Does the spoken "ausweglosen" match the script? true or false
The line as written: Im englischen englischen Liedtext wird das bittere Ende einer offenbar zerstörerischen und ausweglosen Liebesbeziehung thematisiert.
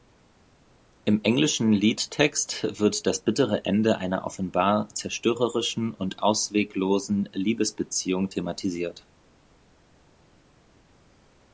true